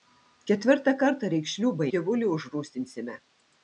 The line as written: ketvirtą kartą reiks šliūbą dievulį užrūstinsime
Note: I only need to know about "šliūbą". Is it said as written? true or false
true